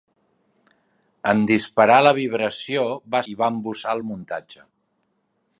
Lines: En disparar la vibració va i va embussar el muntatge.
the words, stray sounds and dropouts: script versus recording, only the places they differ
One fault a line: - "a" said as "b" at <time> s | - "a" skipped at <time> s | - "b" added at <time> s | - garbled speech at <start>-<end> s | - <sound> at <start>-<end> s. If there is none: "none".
none